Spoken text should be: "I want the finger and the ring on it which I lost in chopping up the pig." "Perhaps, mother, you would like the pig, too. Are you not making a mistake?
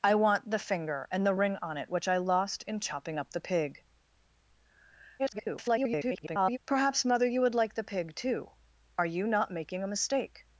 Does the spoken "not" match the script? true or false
true